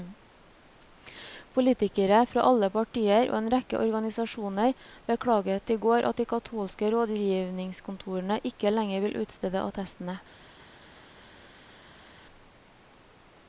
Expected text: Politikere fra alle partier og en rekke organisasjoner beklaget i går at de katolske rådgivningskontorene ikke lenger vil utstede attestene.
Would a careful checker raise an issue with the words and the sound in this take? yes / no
no